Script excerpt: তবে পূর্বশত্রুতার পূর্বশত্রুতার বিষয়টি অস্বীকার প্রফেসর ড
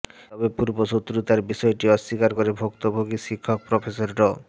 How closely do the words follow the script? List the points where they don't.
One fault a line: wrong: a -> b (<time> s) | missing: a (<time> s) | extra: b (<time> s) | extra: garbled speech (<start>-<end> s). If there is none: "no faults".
missing: পূর্বশত্রুতার (1.4 s)
extra: করে ভুক্তভোগী শিক্ষক (2.4 s)